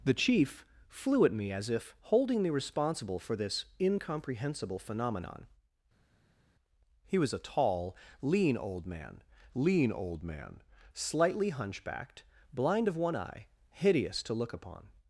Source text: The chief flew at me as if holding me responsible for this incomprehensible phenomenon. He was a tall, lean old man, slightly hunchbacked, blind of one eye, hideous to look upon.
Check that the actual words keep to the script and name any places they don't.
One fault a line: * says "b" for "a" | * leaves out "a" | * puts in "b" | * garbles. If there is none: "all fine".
* puts in "lean old man"